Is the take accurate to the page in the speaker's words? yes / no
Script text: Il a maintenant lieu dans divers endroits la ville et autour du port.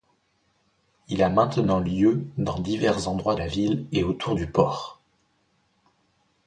yes